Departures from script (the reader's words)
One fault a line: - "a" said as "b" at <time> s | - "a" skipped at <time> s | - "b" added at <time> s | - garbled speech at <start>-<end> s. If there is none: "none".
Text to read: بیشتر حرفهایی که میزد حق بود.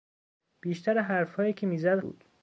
- "حق" skipped at 2.0 s